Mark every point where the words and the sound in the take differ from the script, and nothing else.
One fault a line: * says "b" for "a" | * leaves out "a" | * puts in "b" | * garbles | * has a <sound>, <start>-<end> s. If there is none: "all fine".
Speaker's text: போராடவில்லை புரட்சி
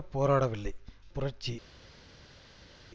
all fine